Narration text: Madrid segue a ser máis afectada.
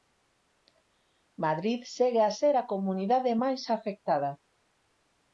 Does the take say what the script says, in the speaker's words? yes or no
no